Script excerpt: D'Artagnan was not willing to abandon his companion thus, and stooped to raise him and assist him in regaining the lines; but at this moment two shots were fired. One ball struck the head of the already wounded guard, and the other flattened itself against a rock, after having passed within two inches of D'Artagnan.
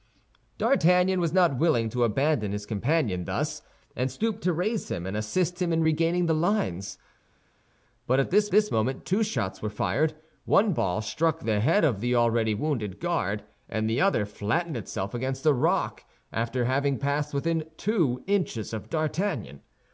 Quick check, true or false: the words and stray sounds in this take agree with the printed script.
false